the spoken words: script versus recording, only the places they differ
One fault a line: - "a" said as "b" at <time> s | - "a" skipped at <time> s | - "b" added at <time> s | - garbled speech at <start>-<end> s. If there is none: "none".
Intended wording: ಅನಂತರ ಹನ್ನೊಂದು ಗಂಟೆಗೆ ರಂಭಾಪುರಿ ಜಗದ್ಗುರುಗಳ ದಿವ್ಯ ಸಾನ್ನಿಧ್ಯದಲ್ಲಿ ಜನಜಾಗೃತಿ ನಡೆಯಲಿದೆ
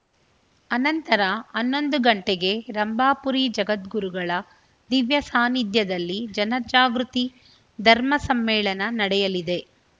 - "ಧರ್ಮ ಸಮ್ಮೇಳನ" added at 7.8 s